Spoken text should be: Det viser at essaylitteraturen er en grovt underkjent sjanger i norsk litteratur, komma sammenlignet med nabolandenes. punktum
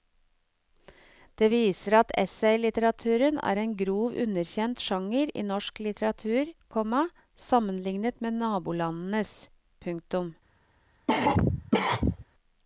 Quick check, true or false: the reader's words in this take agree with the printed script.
true